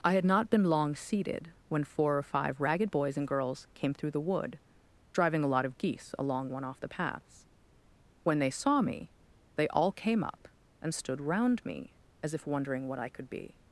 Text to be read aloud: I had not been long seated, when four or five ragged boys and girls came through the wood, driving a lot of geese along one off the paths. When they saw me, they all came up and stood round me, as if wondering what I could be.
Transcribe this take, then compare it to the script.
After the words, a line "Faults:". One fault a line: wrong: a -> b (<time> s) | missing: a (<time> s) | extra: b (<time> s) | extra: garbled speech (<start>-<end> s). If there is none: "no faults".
I had not been long seated, when four or five ragged boys and girls came through the wood, driving a lot of geese along one off the paths. When they saw me, they all came up and stood round me, as if wondering what I could be.
Faults:
no faults